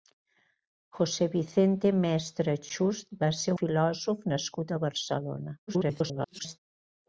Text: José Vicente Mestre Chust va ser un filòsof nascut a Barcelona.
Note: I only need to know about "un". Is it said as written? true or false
false